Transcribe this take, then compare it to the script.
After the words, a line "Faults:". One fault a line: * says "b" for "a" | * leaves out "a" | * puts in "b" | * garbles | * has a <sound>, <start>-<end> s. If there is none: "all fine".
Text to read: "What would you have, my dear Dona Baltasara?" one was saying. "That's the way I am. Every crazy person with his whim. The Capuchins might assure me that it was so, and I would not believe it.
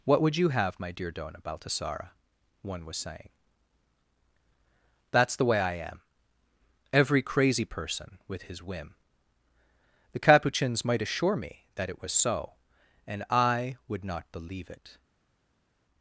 "What would you have, my dear Dona Baltasara?" one was saying. "That's the way I am. Every crazy person with his whim. The Capuchins might assure me that it was so, and I would not believe it.
Faults:
all fine